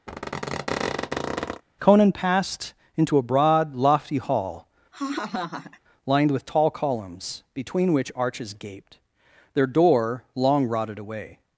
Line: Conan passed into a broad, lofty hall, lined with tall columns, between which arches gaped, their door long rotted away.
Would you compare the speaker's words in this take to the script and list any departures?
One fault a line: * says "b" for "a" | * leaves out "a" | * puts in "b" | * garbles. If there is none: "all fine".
all fine